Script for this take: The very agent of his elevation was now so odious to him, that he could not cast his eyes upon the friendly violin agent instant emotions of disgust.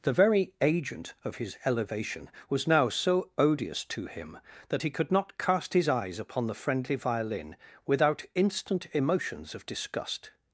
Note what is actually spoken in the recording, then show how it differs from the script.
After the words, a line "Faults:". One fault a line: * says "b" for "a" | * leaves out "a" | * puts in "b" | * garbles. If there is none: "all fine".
The very agent of his elevation was now so odious to him, that he could not cast his eyes upon the friendly violin without instant emotions of disgust.
Faults:
* says "without" for "agent"